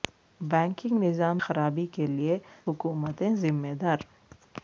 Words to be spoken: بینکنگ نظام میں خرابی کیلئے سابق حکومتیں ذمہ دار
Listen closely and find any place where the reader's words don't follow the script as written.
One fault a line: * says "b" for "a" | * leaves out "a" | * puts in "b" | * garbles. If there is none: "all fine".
* leaves out "میں"
* leaves out "سابق"